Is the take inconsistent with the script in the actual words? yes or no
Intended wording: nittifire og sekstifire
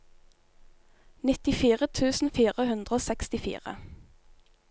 yes